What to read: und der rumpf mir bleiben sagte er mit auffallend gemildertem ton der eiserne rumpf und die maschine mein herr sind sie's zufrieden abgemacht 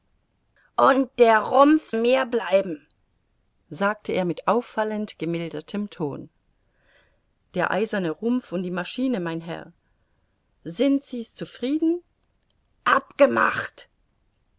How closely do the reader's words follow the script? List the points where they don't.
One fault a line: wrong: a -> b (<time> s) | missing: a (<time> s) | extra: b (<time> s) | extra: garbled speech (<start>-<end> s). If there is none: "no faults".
no faults